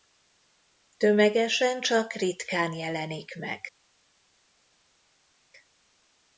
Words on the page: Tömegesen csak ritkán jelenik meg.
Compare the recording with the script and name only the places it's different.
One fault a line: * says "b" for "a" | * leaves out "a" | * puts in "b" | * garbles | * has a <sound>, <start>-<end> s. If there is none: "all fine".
all fine